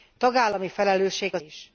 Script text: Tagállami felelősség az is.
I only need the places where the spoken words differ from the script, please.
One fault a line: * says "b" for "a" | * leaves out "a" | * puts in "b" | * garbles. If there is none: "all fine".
all fine